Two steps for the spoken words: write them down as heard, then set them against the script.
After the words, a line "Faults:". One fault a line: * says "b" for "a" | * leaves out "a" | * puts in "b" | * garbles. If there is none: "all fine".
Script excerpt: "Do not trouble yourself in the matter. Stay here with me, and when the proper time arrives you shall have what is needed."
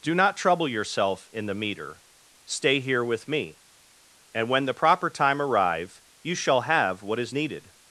"Do not trouble yourself in the meter. Stay here with me, and when the proper time arrive you shall have what is needed."
Faults:
* says "meter" for "matter"
* says "arrive" for "arrives"